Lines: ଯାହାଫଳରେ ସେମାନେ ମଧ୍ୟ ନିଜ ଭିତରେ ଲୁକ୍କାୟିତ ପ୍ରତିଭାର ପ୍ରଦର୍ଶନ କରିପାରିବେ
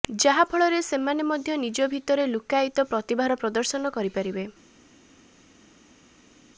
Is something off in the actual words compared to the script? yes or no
no